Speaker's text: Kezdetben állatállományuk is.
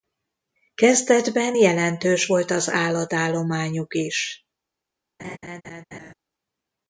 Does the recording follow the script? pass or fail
fail